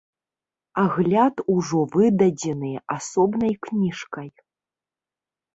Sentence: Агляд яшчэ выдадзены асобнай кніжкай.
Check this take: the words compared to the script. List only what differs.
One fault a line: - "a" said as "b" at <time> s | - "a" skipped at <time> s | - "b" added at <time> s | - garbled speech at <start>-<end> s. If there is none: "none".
- "яшчэ" said as "ужо" at 1.5 s